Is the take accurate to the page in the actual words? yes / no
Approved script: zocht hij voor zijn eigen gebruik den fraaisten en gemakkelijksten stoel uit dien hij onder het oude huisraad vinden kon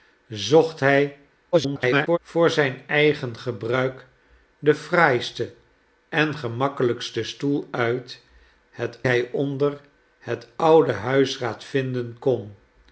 no